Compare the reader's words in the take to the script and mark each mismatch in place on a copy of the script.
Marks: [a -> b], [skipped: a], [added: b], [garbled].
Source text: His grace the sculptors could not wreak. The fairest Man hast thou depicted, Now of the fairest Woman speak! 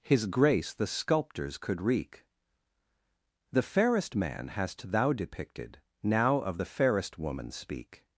His grace the sculptors could [skipped: not] wreak. The fairest Man hast thou depicted, Now of the fairest Woman speak!